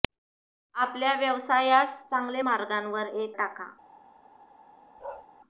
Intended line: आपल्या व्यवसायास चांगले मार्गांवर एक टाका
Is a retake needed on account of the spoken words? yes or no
no